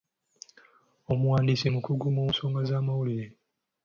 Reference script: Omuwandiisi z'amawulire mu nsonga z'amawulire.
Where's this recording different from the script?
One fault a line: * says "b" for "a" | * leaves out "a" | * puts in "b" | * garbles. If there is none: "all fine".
* says "mukugu" for "z'amawulire"